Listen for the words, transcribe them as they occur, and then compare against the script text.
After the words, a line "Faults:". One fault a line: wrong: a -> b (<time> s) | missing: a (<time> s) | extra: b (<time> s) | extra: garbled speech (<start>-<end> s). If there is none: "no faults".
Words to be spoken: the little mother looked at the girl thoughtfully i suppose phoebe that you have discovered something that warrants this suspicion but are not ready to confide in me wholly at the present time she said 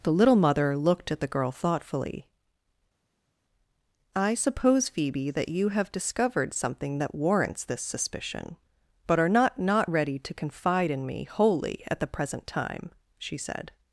the little mother looked at the girl thoughtfully i suppose phoebe that you have discovered something that warrants this suspicion but are not not ready to confide in me wholly at the present time she said
Faults:
extra: not (9.6 s)